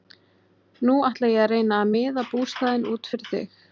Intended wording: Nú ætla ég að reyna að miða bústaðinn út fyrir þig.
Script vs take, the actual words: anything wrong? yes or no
no